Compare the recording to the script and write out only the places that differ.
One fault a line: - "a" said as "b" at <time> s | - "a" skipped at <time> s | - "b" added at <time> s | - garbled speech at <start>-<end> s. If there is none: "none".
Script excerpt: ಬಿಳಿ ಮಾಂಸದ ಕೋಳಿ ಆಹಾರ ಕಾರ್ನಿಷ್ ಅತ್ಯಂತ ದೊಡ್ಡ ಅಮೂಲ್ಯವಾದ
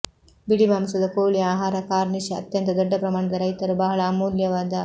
- "ಪ್ರಮಾಣದ ರೈತರು ಬಹಳ" added at 3.0 s